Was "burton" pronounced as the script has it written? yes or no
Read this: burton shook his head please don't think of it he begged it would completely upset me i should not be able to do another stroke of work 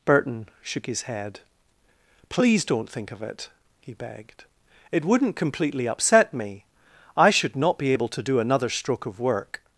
yes